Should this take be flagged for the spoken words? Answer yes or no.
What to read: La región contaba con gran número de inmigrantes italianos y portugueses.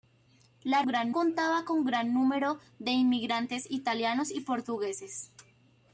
yes